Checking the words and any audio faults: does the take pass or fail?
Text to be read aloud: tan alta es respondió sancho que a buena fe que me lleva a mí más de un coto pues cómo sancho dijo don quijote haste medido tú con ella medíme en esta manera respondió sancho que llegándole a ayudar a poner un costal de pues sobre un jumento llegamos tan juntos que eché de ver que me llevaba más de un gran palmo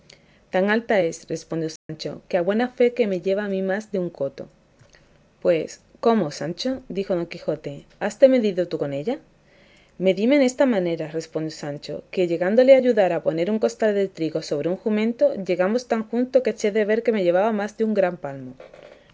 fail